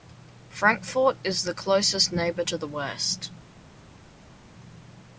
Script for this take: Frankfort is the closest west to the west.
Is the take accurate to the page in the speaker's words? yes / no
no